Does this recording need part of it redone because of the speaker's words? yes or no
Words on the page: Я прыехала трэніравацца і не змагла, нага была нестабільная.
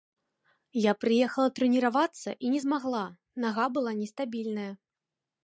no